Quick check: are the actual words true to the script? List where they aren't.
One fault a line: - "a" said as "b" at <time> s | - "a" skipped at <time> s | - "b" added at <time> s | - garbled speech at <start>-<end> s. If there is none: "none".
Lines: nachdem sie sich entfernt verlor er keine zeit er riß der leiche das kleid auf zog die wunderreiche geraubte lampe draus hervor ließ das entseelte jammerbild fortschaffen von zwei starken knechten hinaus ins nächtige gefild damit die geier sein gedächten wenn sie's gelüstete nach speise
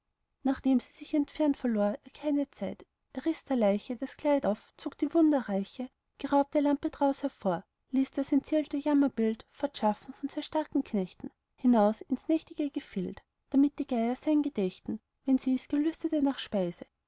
none